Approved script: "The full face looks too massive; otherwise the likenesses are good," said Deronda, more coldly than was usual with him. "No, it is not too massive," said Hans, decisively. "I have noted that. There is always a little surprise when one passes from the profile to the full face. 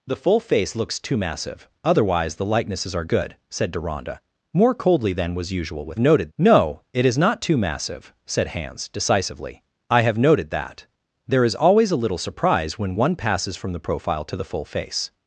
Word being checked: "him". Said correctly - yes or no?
no